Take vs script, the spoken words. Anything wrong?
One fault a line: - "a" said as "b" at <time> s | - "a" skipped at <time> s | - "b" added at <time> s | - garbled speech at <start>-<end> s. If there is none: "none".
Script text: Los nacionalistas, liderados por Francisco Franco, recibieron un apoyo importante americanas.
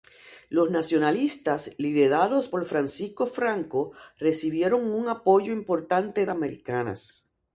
none